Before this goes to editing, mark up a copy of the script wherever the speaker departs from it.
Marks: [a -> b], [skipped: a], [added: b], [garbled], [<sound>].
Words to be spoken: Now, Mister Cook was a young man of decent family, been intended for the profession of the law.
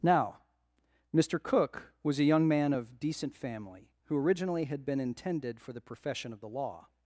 Now, Mister Cook was a young man of decent family, [added: who originally had] been intended for the profession of the law.